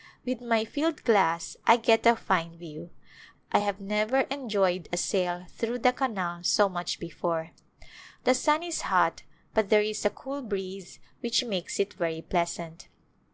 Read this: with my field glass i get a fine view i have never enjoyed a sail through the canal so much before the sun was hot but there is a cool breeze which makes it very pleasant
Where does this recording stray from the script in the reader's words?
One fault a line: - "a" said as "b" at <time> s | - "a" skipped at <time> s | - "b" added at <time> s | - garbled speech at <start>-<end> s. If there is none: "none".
- "was" said as "is" at 8.6 s